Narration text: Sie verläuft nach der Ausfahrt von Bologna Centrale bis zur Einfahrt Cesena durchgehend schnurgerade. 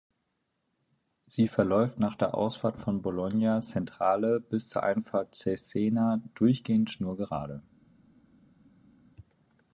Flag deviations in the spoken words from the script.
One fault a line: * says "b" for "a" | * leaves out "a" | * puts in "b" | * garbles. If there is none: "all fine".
all fine